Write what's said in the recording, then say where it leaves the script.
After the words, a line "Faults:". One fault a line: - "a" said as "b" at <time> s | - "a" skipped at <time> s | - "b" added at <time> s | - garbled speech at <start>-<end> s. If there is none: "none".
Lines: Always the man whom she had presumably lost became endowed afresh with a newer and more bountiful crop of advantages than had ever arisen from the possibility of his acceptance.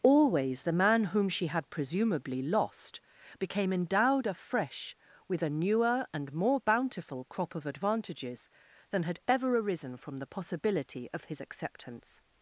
Always the man whom she had presumably lost became endowed afresh with a newer and more bountiful crop of advantages than had ever arisen from the possibility of his acceptance.
Faults:
none